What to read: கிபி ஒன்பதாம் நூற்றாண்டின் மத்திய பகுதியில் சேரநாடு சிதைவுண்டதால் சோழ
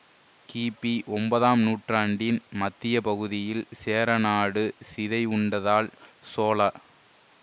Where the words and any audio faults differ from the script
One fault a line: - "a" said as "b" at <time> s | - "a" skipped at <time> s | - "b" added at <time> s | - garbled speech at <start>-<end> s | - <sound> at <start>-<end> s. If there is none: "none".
none